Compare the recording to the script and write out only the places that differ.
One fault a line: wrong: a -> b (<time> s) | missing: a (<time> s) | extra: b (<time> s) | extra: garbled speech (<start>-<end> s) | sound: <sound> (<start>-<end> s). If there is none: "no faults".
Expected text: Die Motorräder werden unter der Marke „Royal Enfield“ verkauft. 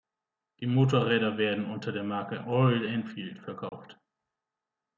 sound: dropout (3.7-3.7 s)